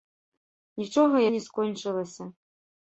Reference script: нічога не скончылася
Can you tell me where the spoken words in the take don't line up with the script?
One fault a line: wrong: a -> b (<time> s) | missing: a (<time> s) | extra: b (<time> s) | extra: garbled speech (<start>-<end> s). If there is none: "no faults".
no faults